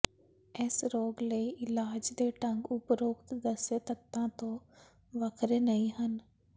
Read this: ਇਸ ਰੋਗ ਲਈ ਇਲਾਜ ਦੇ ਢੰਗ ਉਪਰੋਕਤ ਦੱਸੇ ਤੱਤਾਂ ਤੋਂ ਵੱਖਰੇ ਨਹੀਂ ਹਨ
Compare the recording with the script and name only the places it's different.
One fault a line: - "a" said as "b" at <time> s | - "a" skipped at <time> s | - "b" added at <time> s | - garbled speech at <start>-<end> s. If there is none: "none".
none